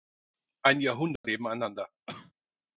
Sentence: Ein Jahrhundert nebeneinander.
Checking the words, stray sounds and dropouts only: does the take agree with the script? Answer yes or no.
no